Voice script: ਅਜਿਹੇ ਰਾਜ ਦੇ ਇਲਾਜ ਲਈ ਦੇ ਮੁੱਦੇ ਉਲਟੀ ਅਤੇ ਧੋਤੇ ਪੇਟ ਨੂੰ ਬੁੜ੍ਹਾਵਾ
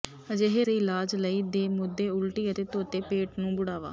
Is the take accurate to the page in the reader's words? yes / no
no